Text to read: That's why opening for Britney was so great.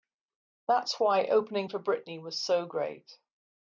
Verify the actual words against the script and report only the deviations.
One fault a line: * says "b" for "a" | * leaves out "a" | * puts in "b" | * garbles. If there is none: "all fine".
all fine